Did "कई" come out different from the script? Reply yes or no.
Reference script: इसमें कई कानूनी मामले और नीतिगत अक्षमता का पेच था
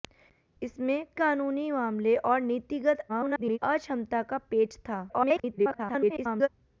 yes